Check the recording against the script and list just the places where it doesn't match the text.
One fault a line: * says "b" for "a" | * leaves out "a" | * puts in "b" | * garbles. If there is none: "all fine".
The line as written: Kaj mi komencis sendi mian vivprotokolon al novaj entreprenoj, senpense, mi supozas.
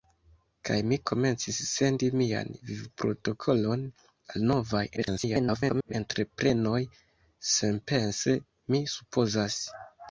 * garbles